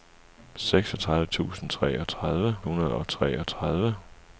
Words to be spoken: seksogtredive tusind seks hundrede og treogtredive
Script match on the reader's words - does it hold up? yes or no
no